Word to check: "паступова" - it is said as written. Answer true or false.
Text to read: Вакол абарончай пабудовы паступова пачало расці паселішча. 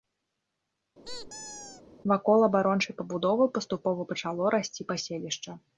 true